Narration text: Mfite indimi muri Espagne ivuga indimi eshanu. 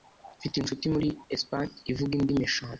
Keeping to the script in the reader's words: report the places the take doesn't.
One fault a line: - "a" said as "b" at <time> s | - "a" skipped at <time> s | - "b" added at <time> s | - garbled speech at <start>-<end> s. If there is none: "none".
- "indimi" said as "inshuti" at 0.6 s